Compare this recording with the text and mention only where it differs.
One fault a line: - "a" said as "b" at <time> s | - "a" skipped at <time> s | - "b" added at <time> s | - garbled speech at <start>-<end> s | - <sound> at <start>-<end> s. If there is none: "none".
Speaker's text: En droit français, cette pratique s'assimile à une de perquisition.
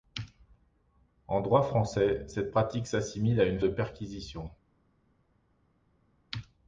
none